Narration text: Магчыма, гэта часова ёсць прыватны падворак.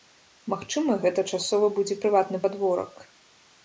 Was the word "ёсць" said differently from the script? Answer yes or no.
yes